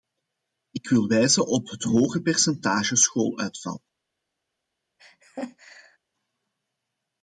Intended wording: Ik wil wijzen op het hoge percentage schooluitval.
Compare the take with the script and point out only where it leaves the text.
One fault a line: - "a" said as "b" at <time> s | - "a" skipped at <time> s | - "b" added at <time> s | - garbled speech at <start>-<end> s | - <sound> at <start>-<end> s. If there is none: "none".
- laugh at 5.0-6.0 s